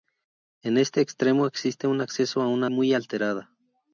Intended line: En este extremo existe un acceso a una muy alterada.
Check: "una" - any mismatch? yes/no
no